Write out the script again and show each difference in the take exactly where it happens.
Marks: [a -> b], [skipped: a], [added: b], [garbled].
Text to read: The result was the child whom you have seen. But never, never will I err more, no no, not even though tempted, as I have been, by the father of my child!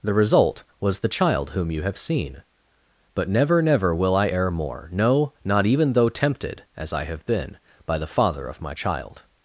The result was the child whom you have seen. But never, never will I err more, no [skipped: no,] not even though tempted, as I have been, by the father of my child!